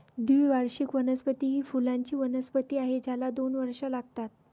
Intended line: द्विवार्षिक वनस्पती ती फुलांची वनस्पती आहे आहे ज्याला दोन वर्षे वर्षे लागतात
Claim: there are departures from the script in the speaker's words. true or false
true